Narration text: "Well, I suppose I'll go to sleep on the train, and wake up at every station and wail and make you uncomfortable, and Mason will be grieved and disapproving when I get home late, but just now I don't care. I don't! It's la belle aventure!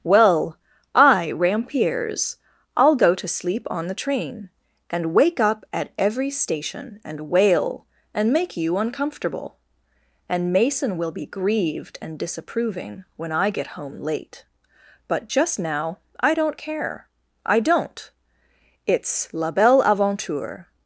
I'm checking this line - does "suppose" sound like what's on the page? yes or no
no